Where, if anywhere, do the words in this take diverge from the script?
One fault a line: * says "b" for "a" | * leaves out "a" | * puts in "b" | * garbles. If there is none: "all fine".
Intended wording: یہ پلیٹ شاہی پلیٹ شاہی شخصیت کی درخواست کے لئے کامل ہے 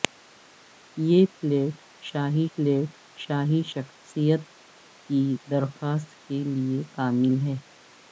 all fine